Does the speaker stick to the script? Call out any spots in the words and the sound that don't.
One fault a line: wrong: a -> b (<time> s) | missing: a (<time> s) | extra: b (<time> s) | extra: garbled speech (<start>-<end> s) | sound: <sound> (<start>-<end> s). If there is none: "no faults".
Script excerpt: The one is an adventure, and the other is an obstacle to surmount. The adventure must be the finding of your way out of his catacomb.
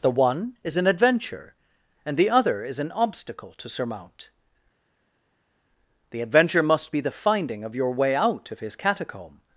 no faults